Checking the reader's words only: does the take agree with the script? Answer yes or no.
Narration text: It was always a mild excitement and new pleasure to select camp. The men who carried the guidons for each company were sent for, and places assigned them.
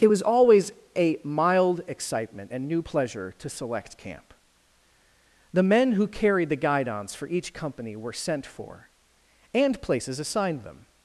yes